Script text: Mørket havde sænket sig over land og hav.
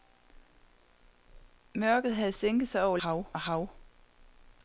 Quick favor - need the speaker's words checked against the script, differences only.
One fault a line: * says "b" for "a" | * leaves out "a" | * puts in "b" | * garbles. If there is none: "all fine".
* says "hav" for "land"